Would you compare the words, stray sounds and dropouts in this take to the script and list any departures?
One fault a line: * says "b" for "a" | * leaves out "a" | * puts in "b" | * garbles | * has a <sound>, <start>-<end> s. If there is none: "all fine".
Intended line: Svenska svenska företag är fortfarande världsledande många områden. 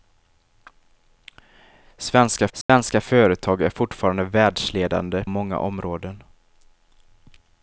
* has a dropout, 2.6-2.7 s